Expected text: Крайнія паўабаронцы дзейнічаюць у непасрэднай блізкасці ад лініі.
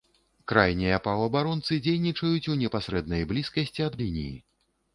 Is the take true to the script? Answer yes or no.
yes